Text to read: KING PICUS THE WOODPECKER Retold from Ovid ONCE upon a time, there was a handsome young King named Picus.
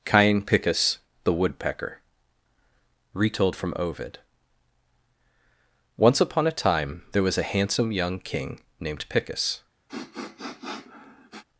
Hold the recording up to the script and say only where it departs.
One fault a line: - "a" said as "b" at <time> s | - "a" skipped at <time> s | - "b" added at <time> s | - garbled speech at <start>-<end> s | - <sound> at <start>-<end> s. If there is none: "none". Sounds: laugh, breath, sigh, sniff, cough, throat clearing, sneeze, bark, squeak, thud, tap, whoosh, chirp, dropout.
- "KING" said as "Cain" at 0.0 s
- sniff at 9.9-11.4 s